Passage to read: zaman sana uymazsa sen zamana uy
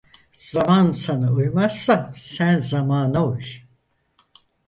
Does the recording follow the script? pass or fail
pass